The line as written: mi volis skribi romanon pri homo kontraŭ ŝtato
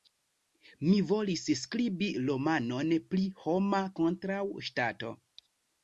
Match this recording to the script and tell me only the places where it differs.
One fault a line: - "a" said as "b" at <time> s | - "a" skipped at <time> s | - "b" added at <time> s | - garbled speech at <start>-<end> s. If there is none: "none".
none